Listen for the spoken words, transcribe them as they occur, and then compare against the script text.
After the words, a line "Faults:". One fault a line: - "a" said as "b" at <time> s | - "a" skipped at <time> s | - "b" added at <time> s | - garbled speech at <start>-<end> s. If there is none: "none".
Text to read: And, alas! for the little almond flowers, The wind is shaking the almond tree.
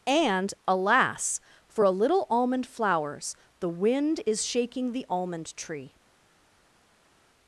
And, alas! for a little almond flowers, The wind is shaking the almond tree.
Faults:
- "the" said as "a" at 1.8 s